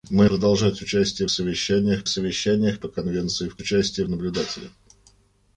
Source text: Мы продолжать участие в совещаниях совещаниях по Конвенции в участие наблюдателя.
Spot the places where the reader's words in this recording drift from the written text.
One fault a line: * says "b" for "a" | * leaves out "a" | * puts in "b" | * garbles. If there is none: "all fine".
all fine